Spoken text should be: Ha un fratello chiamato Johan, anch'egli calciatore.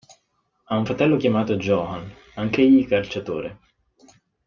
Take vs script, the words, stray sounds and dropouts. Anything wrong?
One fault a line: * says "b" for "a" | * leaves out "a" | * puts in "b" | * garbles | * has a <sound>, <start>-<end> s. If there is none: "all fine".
all fine